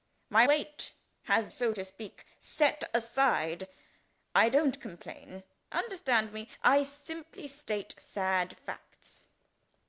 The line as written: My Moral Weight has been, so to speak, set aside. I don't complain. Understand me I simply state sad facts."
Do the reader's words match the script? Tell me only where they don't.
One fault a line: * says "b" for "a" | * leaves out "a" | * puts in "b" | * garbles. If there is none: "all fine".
* leaves out "Moral"
* leaves out "been"